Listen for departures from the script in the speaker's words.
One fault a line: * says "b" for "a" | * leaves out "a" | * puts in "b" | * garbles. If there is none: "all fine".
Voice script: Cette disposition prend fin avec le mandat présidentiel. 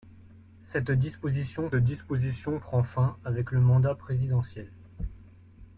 * puts in "disposition"